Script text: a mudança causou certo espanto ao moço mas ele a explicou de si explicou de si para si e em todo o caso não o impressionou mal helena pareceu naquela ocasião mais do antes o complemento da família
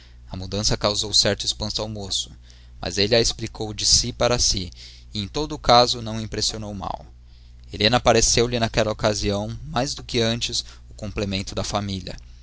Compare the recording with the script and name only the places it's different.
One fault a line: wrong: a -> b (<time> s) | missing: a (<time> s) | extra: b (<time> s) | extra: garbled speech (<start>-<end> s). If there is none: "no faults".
missing: explicou de si (4.1 s)
extra: lhe (8.5 s)
extra: que (10.0 s)